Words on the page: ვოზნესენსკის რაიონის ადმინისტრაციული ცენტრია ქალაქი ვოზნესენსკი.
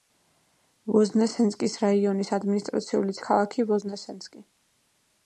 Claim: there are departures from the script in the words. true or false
true